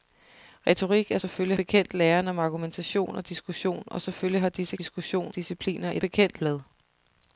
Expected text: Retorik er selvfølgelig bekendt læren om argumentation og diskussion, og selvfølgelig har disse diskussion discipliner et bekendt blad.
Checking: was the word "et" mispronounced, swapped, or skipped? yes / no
no